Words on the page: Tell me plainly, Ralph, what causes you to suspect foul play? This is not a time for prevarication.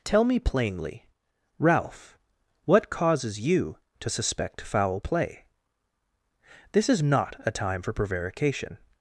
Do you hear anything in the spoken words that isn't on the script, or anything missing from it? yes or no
no